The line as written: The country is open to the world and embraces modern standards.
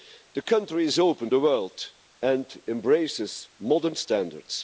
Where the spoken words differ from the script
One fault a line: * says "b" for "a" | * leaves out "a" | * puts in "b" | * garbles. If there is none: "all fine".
* leaves out "to"